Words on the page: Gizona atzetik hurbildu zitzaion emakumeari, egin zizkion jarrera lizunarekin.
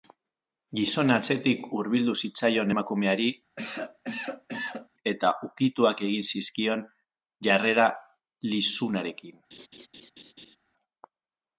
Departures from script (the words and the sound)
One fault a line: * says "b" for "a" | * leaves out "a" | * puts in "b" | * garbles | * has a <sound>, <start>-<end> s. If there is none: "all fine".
* has a cough, 3.6-4.9 s
* puts in "eta ukituak"
* has a laugh, 9.5-10.6 s